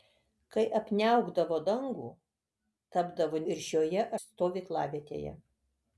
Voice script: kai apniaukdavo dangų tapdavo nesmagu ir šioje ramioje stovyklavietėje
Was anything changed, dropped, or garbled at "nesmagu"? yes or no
yes